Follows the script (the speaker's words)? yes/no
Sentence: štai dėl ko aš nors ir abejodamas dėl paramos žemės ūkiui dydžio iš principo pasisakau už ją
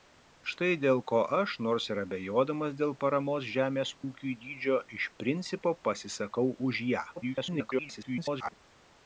no